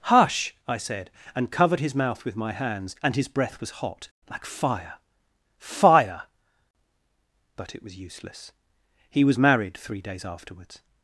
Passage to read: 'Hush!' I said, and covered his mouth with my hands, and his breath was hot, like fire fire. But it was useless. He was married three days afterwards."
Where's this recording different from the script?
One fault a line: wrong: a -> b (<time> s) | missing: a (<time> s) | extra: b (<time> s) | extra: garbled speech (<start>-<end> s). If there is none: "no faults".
no faults